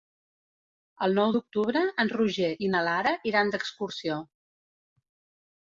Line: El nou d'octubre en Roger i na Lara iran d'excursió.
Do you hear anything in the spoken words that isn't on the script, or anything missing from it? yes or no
no